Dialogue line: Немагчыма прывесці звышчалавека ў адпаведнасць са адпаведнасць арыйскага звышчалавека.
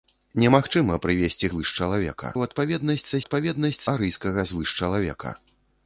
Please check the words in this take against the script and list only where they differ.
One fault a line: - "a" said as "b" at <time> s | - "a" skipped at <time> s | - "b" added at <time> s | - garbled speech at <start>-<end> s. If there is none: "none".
none